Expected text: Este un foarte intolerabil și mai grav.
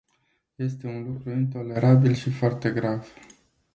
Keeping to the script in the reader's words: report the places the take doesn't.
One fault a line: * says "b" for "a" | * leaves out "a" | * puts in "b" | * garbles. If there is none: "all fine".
* says "lucru" for "foarte"
* says "foarte" for "mai"